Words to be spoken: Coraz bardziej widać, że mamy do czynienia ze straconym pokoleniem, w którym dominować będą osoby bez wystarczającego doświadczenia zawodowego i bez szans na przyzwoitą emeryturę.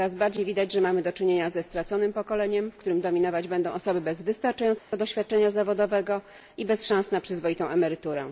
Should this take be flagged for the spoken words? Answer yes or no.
no